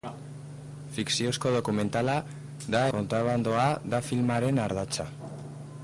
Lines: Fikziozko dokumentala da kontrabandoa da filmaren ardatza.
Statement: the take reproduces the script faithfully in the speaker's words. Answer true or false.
true